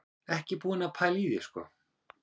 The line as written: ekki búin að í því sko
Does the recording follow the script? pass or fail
fail